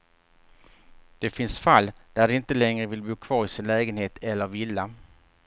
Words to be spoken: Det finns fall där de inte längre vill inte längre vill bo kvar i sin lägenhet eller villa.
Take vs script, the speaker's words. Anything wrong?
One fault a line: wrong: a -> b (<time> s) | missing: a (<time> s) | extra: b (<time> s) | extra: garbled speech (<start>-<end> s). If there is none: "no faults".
missing: inte längre vill (3.0 s)